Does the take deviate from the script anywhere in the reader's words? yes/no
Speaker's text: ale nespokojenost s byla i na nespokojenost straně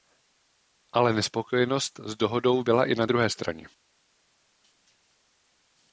yes